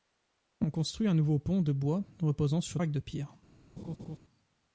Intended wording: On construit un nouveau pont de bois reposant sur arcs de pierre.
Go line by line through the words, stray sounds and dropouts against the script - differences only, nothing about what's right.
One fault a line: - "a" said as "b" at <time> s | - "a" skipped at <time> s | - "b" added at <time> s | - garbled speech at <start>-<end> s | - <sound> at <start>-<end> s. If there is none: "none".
- laugh at 3.8-4.2 s